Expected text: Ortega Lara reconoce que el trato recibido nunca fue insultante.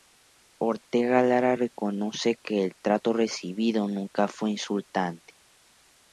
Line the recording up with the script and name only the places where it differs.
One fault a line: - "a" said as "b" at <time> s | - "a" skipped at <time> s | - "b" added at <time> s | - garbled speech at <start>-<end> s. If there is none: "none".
none